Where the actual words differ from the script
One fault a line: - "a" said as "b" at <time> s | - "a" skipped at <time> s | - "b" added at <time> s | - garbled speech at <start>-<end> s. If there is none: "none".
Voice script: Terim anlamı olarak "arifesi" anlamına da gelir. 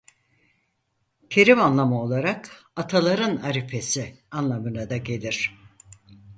- "ataların" added at 2.8 s